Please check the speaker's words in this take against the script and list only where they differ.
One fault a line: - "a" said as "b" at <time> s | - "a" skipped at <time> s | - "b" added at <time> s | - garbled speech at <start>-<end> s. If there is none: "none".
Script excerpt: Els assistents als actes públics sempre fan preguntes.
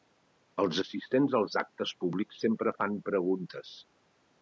none